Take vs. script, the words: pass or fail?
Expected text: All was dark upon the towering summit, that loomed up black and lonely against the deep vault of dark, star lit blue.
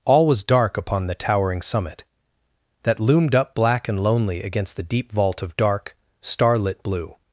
pass